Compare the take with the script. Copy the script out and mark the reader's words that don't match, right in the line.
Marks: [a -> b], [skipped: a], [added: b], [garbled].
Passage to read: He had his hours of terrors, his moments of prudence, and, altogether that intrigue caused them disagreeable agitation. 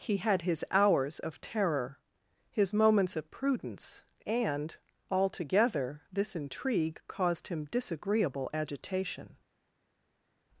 He had his hours of [terrors, -> terror] his moments of prudence, and, altogether [that -> this] intrigue caused [them -> him] disagreeable agitation.